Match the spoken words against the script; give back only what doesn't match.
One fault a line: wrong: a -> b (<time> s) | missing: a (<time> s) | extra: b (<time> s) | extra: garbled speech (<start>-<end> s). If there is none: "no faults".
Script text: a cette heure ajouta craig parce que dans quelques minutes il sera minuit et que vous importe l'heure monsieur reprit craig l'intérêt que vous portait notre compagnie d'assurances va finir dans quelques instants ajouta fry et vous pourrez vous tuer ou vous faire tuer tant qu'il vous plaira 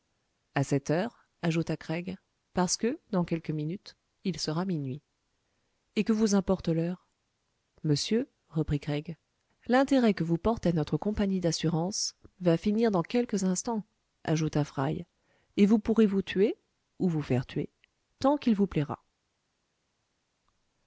no faults